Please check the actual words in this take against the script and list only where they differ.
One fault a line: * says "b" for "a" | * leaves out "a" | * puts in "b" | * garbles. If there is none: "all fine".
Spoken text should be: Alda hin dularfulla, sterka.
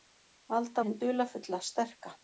all fine